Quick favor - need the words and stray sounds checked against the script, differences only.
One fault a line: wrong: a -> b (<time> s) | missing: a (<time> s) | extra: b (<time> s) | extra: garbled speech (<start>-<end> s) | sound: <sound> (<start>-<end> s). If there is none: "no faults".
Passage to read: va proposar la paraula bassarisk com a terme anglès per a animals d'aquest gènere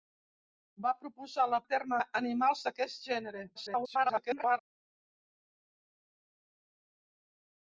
missing: paraula bassarisk com (1.6 s)
missing: anglès per (2.0 s)
extra: garbled speech (3.5-4.6 s)